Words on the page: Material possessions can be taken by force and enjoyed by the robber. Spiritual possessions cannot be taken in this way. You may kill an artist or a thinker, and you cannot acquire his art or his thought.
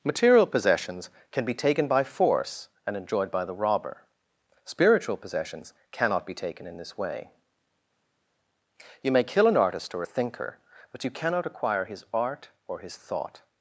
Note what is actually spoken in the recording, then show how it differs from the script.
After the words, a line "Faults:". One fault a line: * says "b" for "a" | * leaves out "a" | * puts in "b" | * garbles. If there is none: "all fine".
Material possessions can be taken by force and enjoyed by the robber. Spiritual possessions cannot be taken in this way. You may kill an artist or a thinker, but you cannot acquire his art or his thought.
Faults:
* says "but" for "and"